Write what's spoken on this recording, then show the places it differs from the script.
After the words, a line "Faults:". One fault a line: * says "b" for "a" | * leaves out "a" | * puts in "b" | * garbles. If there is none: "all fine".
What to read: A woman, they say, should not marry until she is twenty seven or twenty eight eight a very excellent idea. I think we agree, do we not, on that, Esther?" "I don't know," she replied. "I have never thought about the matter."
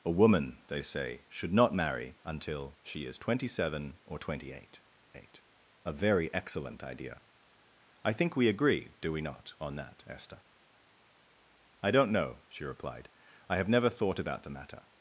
A woman, they say, should not marry until she is twenty seven or twenty eight eight a very excellent idea. I think we agree, do we not, on that, Esther?" "I don't know," she replied. "I have never thought about the matter."
Faults:
all fine